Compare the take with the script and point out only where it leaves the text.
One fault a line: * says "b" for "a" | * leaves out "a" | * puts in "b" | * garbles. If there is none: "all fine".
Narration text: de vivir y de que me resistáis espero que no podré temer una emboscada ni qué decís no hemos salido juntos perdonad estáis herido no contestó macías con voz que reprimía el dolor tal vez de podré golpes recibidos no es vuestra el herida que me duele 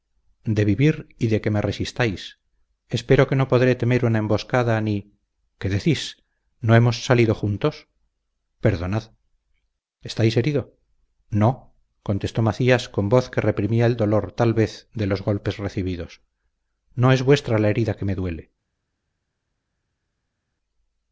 * says "los" for "podré"
* says "la" for "el"